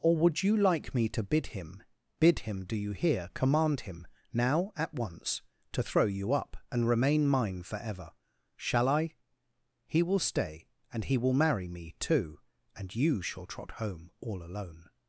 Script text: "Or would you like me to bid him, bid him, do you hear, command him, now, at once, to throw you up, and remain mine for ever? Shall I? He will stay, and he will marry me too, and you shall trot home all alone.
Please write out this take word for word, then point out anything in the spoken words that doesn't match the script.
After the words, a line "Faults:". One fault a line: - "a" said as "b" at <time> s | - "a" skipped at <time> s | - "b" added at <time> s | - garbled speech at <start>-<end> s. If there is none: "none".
"Or would you like me to bid him, bid him, do you hear, command him, now, at once, to throw you up, and remain mine for ever? Shall I? He will stay, and he will marry me too, and you shall trot home all alone.
Faults:
none